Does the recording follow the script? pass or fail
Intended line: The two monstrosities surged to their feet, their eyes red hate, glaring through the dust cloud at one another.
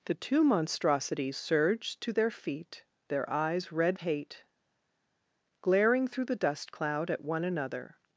pass